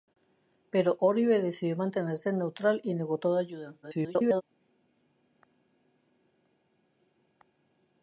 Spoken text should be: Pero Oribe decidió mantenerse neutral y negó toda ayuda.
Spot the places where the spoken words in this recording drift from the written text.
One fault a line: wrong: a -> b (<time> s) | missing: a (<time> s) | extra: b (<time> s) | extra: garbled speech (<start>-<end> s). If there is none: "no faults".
extra: garbled speech (3.8-4.4 s)